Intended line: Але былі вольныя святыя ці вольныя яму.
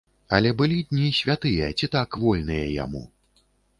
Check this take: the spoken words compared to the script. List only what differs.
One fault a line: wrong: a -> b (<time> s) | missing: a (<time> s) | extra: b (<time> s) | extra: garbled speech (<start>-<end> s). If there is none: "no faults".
wrong: вольныя -> дні (0.9 s)
extra: так (2.0 s)